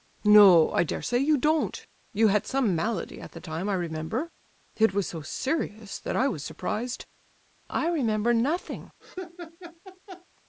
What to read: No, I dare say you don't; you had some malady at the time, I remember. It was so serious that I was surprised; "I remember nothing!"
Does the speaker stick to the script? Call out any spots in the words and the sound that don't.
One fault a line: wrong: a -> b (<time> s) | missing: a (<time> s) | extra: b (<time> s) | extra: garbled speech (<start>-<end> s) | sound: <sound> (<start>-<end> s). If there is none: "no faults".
sound: laugh (9.0-10.3 s)